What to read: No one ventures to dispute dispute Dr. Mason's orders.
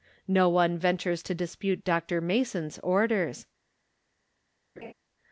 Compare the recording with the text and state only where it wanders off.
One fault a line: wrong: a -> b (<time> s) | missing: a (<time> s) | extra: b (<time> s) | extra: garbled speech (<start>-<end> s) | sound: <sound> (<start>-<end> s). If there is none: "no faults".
missing: dispute (1.8 s)
sound: laugh (4.8-4.9 s)